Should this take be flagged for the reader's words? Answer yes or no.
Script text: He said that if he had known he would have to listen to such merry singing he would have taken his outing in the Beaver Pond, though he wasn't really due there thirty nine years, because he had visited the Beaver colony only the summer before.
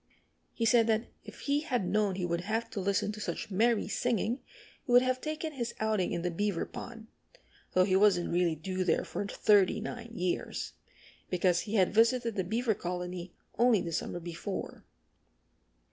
yes